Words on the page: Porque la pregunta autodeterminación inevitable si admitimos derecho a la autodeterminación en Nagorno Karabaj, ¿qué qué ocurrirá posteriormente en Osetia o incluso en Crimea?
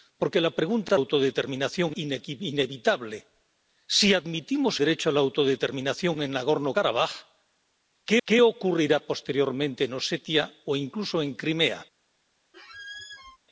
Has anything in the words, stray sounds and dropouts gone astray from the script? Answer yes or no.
yes